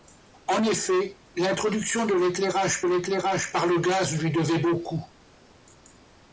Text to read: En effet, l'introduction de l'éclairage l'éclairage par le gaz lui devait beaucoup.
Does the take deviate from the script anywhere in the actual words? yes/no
no